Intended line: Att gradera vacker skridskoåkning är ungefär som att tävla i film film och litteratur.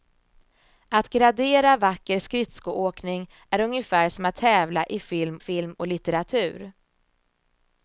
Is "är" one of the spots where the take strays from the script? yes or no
no